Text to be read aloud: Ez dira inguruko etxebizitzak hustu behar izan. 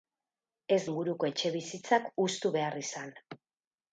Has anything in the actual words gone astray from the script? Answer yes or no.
yes